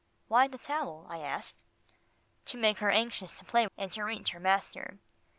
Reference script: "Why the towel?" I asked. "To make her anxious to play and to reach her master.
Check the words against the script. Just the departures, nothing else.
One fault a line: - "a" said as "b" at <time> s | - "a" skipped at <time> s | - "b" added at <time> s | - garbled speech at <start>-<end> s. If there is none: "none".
none